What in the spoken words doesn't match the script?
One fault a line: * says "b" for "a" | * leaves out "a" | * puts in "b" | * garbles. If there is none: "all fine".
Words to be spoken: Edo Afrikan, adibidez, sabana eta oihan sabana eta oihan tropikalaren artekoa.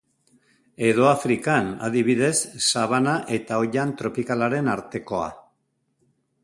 * leaves out "sabana eta oihan"